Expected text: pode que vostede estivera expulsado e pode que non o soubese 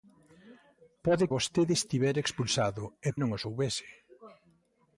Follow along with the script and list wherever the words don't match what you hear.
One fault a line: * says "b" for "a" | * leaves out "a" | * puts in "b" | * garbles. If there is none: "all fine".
* leaves out "que"
* leaves out "pode que"